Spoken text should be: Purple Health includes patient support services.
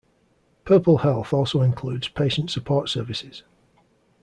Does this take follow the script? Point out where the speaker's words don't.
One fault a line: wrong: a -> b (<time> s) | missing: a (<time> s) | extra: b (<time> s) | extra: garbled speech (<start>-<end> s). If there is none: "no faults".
extra: also (1.3 s)